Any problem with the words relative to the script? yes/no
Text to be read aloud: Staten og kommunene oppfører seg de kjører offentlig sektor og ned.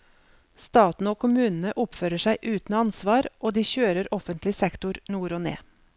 yes